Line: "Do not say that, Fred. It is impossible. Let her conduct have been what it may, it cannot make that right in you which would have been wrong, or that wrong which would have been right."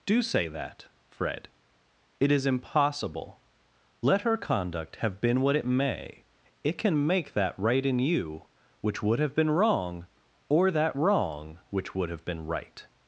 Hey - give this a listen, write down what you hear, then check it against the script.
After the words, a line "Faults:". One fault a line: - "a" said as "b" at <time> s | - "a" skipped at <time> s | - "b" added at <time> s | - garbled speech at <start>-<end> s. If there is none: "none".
"Do say that, Fred. It is impossible. Let her conduct have been what it may, it can make that right in you which would have been wrong, or that wrong which would have been right."
Faults:
- "not" skipped at 0.2 s
- "cannot" said as "can" at 6.8 s